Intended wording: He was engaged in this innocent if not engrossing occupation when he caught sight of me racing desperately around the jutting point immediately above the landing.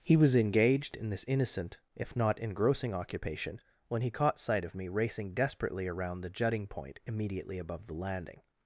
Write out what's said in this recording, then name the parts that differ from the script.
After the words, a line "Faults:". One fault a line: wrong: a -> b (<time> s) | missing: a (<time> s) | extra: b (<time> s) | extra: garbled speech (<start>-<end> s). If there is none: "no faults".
He was engaged in this innocent if not engrossing occupation when he caught sight of me racing desperately around the jutting point immediately above the landing.
Faults:
no faults